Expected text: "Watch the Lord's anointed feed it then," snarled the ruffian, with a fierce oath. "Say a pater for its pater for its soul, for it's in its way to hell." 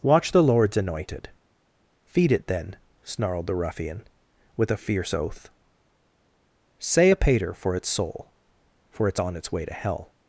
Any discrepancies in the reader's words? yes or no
yes